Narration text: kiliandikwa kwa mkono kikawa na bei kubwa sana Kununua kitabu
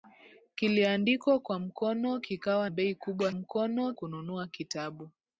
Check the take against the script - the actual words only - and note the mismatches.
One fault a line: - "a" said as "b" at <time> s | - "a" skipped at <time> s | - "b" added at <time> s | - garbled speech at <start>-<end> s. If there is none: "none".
- "na" skipped at 2.7 s
- "sana" said as "mkono" at 3.3 s